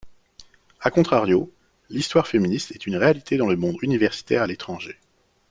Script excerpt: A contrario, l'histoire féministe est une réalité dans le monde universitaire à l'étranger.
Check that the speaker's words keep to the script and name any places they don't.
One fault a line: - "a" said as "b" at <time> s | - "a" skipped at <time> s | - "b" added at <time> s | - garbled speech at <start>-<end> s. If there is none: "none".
none